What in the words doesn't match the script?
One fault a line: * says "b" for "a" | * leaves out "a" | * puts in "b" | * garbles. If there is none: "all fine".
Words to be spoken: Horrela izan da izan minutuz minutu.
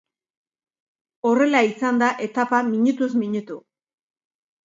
* says "etapa" for "izan"